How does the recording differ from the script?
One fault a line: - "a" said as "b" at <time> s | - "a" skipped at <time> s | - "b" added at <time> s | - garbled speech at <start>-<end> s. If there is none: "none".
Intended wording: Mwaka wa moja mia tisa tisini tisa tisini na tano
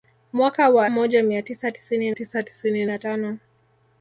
none